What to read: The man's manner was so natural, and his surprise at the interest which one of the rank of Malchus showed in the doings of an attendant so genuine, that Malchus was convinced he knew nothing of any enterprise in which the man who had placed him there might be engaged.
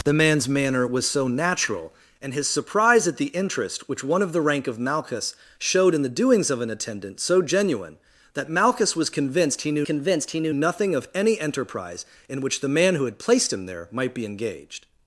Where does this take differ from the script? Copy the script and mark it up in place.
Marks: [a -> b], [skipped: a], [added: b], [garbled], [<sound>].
The man's manner was so natural, and his surprise at the interest which one of the rank of Malchus showed in the doings of an attendant so genuine, that Malchus was convinced he knew [added: convinced he knew] nothing of any enterprise in which the man who had placed him there might be engaged.